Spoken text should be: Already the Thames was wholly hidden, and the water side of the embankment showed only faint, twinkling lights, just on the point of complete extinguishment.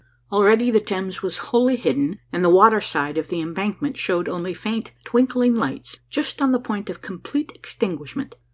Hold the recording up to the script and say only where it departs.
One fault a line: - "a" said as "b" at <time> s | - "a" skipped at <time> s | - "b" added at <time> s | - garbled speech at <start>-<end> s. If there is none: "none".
none